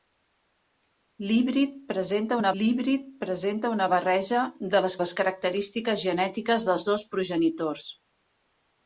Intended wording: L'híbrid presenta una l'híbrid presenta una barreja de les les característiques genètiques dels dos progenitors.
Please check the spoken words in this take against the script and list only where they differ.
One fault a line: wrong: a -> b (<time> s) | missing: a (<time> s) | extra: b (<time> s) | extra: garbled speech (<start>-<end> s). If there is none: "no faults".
no faults